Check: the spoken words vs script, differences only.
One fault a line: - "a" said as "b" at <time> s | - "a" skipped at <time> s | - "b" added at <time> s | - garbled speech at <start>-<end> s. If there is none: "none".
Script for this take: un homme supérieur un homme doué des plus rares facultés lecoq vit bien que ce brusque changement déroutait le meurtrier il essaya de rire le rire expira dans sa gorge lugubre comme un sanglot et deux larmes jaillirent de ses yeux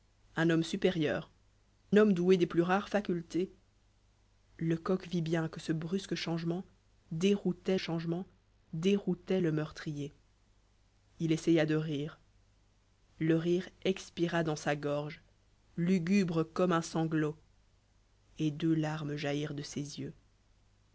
- "un" skipped at 1.3 s
- "changement déroutait" added at 7.8 s